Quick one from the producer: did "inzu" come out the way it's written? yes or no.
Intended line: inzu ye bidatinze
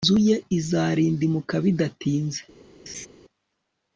yes